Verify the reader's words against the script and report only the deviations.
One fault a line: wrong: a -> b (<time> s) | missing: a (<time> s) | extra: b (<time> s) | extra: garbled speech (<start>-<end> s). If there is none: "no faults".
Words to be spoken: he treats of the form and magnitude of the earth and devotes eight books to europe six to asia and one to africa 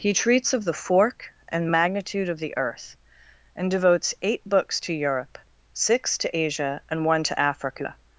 wrong: form -> fork (0.7 s)